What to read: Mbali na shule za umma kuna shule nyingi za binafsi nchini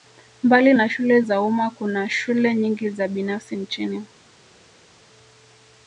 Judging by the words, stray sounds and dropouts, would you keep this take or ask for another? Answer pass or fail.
pass